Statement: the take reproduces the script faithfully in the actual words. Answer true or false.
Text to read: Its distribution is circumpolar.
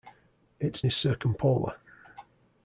false